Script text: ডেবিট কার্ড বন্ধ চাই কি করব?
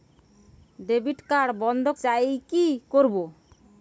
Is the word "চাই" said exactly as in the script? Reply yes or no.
yes